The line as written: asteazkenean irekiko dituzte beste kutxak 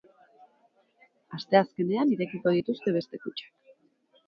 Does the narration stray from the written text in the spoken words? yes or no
no